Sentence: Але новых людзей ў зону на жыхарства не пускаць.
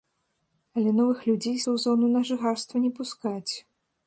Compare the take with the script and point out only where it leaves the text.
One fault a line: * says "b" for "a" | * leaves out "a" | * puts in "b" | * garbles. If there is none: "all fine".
all fine